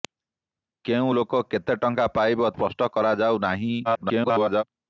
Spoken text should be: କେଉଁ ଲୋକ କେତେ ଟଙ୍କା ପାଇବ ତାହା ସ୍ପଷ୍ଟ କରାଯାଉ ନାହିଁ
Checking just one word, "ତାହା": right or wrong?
wrong